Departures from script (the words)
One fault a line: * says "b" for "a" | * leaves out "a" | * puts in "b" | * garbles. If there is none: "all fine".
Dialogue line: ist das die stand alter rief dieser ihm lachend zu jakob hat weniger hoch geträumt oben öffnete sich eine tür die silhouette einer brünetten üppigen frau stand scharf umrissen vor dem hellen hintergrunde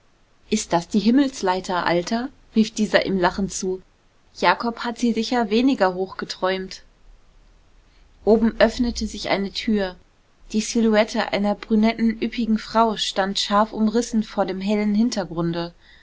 * says "himmelsleiter" for "stand"
* puts in "sie sicher"